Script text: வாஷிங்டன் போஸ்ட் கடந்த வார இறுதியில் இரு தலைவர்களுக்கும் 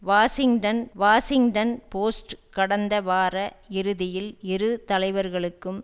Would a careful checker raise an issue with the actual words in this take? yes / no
yes